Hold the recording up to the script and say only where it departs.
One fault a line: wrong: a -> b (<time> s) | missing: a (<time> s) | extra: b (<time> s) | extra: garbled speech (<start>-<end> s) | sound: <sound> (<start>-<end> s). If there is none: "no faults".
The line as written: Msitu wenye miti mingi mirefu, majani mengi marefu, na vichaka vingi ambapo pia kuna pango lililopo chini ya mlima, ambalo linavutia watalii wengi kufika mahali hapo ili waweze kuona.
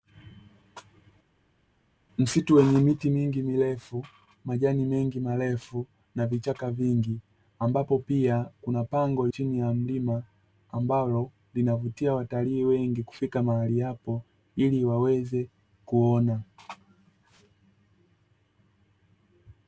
missing: lililopo (9.3 s)